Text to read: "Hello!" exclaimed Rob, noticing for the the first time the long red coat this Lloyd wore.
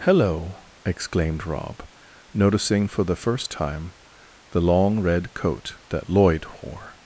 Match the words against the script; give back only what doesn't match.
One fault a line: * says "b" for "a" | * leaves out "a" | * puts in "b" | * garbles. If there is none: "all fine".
* leaves out "the"
* says "that" for "this"